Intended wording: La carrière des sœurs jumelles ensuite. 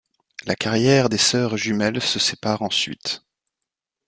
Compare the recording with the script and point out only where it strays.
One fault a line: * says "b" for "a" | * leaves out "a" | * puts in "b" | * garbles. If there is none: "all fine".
* puts in "se sépare"